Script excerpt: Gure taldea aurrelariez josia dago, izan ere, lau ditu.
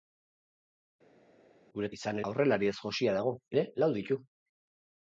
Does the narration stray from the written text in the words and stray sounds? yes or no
yes